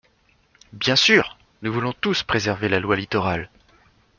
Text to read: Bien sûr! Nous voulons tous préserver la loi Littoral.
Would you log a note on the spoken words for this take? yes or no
no